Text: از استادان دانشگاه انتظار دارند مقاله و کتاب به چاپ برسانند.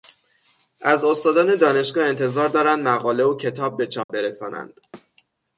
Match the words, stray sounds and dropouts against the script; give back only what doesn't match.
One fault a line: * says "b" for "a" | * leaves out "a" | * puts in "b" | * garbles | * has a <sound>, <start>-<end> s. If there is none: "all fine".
* has a dropout, 4.0-4.1 s
* has a thud, 4.9-5.1 s